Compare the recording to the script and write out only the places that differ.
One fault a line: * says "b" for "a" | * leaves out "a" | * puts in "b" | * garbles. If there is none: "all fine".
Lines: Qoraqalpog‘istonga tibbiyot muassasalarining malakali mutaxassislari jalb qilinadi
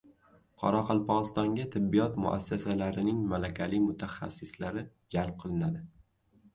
all fine